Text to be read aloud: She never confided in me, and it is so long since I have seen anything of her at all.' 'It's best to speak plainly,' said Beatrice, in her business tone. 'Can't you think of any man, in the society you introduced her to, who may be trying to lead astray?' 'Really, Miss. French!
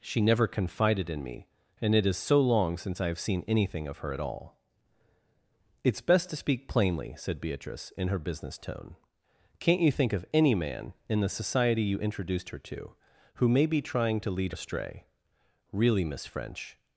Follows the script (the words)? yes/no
yes